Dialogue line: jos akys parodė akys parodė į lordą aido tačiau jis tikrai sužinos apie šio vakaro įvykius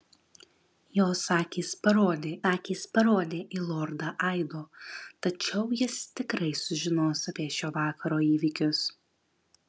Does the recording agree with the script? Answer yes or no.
yes